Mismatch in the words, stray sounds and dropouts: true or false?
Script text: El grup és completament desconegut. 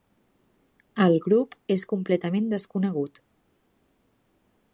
false